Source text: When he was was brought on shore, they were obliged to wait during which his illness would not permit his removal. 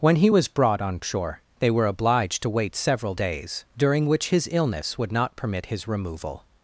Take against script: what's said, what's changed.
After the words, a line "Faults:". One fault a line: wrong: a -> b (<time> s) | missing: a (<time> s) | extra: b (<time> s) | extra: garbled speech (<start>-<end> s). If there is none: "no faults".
When he was brought on shore, they were obliged to wait several days, during which his illness would not permit his removal.
Faults:
missing: was (0.5 s)
extra: several days (2.7 s)